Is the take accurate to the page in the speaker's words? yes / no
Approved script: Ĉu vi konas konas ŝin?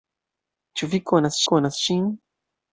yes